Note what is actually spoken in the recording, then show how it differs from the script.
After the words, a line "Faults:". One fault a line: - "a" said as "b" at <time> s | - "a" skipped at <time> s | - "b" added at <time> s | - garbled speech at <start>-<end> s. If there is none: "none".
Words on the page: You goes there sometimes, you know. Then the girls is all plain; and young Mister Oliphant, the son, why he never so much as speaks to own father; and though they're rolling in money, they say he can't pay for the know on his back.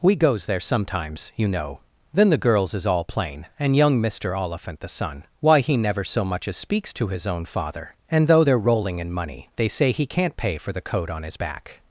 We goes there sometimes, you know. Then the girls is all plain; and young Mister Oliphant, the son, why he never so much as speaks to his own father; and though they're rolling in money, they say he can't pay for the coat on his back.
Faults:
- "You" said as "We" at 0.0 s
- "his" added at 7.1 s
- "know" said as "coat" at 10.9 s